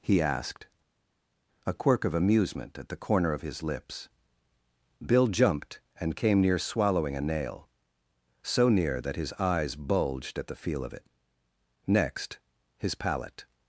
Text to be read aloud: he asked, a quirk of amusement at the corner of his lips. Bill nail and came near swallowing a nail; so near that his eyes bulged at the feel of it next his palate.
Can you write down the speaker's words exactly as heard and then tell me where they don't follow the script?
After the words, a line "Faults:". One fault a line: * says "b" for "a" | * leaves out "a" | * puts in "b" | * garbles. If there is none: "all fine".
he asked, a quirk of amusement at the corner of his lips. Bill jumped and came near swallowing a nail; so near that his eyes bulged at the feel of it next his palate.
Faults:
* says "jumped" for "nail"